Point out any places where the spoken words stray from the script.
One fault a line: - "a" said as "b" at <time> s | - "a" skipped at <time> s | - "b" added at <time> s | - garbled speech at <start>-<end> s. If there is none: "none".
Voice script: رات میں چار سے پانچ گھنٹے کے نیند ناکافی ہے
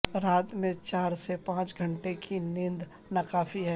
- "کے" said as "کی" at 2.2 s